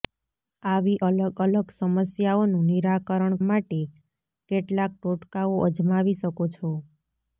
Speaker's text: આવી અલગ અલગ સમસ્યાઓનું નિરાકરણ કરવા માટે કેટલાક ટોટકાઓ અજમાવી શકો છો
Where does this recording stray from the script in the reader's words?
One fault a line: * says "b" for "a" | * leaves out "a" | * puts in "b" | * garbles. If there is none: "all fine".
* leaves out "કરવા"